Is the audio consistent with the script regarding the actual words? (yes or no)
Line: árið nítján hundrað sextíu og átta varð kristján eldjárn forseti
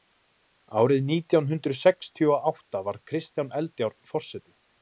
yes